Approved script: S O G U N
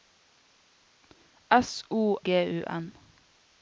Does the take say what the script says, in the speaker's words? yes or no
yes